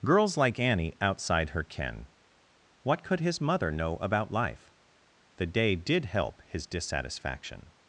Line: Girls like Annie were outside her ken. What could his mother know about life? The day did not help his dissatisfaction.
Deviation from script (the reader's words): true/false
true